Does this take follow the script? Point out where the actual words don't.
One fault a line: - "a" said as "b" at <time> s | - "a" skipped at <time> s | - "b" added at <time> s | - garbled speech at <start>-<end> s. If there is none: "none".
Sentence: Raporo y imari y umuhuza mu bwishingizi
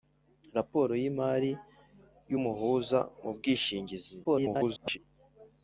- garbled speech at 4.2-5.0 s